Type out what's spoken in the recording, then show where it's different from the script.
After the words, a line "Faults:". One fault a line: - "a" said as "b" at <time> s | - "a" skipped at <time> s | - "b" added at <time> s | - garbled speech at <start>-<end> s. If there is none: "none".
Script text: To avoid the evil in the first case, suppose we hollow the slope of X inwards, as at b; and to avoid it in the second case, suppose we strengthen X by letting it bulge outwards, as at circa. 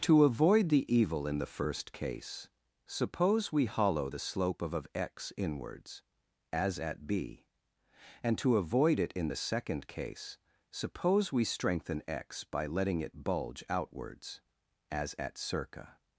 To avoid the evil in the first case, suppose we hollow the slope of of X inwards, as at b; and to avoid it in the second case, suppose we strengthen X by letting it bulge outwards, as at circa.
Faults:
- "of" added at 4.7 s